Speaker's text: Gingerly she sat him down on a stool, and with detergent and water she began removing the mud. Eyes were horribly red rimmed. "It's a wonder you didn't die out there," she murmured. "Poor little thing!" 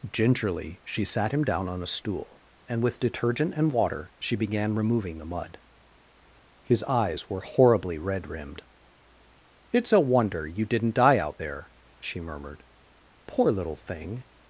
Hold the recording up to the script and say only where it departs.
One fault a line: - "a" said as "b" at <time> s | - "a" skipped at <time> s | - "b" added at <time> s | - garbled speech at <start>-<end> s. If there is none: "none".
- "His" added at 6.6 s